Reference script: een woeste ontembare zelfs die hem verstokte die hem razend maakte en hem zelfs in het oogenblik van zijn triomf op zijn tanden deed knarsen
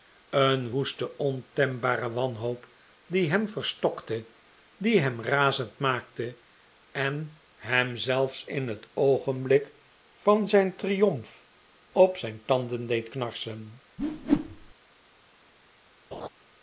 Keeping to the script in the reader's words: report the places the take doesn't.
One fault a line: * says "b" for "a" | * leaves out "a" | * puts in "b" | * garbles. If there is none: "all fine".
* says "wanhoop" for "zelfs"